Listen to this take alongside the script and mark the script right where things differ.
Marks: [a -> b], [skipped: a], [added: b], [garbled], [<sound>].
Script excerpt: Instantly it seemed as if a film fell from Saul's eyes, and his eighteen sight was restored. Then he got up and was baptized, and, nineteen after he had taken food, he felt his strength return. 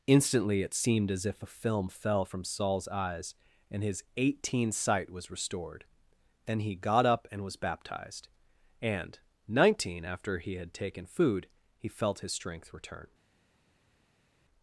Instantly it seemed as if a film fell from Saul's eyes, and his eighteen sight was restored. Then he got up and was baptized, and, nineteen after he had taken food, he felt his strength return.